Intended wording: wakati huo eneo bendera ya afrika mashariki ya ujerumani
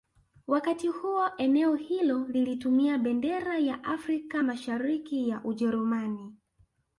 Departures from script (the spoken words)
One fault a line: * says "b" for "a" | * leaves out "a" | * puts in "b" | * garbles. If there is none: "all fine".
* puts in "hilo lilitumia"